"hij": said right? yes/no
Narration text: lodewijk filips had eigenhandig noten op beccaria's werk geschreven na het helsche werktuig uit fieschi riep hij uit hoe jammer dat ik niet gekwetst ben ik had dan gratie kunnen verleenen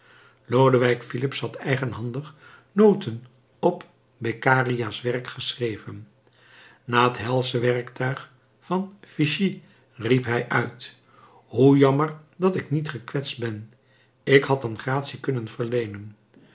yes